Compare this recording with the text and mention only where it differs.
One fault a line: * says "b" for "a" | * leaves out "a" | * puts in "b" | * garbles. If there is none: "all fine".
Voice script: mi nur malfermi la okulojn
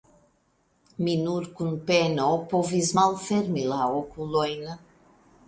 * puts in "kun peno povis"